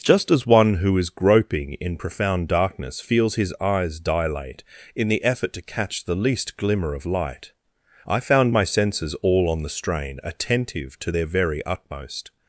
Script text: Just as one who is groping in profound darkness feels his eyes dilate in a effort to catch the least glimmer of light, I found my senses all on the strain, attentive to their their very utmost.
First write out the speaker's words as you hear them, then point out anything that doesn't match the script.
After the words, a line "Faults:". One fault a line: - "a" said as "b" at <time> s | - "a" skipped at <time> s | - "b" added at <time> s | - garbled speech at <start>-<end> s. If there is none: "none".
Just as one who is groping in profound darkness feels his eyes dilate in the effort to catch the least glimmer of light, I found my senses all on the strain, attentive to their very utmost.
Faults:
- "a" said as "the" at 5.1 s
- "their" skipped at 11.2 s